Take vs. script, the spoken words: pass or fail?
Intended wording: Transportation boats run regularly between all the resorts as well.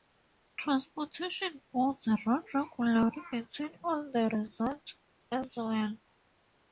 pass